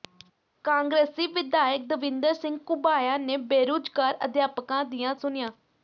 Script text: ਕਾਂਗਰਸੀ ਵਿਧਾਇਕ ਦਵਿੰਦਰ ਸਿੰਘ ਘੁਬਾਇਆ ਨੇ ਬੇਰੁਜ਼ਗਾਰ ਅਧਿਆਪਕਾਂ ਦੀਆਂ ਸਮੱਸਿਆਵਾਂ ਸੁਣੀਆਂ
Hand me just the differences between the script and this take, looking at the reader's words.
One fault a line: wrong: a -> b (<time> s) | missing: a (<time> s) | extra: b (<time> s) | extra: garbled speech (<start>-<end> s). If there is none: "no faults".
missing: ਸਮੱਸਿਆਵਾਂ (5.2 s)